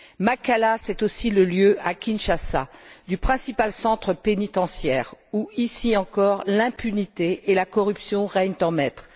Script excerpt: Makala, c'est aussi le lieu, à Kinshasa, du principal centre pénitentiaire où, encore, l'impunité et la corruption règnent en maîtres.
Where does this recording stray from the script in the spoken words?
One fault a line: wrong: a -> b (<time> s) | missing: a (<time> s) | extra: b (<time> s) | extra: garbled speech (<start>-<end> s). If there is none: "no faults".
extra: ici (5.6 s)